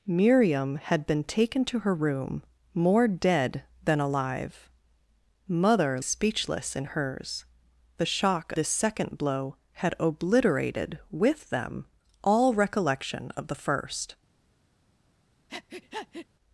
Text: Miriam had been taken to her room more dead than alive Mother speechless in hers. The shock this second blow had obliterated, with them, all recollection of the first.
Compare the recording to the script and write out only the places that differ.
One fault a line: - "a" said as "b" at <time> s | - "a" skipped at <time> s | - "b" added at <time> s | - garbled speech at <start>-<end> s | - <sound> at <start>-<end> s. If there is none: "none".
- breath at 15.5-16.3 s